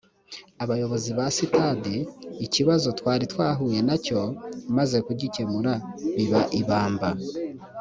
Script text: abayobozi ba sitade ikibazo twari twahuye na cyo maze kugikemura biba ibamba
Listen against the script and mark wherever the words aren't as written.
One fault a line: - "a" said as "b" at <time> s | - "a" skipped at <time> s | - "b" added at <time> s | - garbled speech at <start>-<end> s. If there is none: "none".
none